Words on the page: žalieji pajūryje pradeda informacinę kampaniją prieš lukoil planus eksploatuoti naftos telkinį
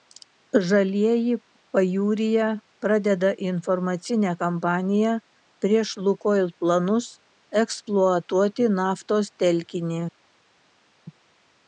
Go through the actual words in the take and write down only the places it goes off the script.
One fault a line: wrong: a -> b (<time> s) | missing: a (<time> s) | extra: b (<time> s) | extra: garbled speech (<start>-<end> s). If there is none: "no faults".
no faults